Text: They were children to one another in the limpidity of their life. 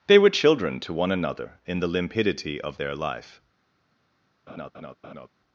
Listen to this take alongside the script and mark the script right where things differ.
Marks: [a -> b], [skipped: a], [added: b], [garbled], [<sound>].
They were children to one another in the limpidity of their life. [laugh]